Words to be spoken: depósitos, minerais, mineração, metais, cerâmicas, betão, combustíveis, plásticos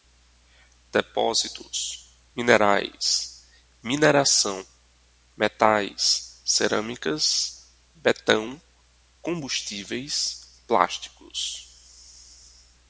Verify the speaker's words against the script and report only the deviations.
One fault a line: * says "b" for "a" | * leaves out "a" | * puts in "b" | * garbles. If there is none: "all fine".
all fine